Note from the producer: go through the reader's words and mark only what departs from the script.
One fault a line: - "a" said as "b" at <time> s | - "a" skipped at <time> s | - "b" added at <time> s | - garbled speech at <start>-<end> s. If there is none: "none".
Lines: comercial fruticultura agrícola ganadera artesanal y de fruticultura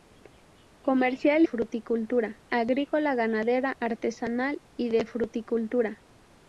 none